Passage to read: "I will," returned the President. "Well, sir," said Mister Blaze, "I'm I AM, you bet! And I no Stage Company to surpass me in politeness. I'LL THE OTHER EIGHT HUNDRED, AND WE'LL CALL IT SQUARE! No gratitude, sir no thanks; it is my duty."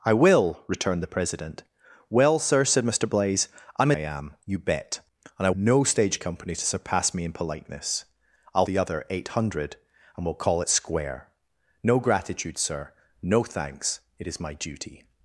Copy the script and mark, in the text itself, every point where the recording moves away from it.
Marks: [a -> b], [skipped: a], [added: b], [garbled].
"I will," returned the President. "Well, sir," said Mister Blaze, "I'm I AM, you bet! And I no Stage Company to surpass me in politeness. I'LL THE OTHER EIGHT HUNDRED, AND WE'LL CALL IT SQUARE! No gratitude, sir no thanks; it is my duty."